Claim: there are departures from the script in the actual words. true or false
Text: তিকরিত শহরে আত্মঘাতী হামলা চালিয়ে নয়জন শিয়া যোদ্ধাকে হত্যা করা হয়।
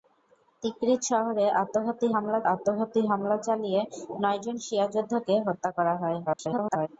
true